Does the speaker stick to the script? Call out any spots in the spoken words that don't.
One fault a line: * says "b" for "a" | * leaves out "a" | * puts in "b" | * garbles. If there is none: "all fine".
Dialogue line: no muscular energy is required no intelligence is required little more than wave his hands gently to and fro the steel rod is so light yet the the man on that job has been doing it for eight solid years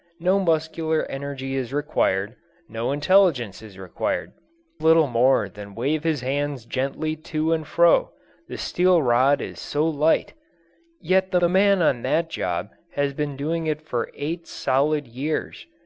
all fine